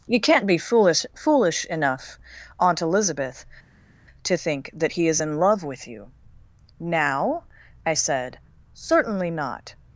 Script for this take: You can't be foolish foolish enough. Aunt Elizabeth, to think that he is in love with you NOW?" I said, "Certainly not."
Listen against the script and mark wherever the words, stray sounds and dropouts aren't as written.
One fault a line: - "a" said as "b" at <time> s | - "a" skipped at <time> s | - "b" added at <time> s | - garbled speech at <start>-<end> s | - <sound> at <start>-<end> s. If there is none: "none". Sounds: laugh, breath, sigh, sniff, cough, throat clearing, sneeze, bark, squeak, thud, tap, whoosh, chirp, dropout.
none